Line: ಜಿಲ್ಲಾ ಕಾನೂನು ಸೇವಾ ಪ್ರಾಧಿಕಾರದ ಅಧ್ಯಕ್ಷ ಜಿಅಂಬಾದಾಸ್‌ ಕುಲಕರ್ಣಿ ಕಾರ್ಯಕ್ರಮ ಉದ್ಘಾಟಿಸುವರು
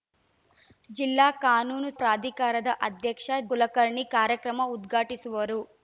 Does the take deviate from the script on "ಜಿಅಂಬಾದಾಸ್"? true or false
true